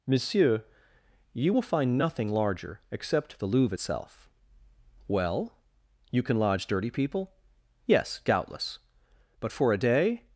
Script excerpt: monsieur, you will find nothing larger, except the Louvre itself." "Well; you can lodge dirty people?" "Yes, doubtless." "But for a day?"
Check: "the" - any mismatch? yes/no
no